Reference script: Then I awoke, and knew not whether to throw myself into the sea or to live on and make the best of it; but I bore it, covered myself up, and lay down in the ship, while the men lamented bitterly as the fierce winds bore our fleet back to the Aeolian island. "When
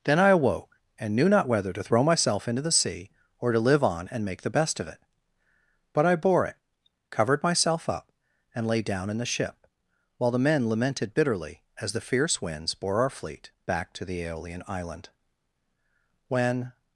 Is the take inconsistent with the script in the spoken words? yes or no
no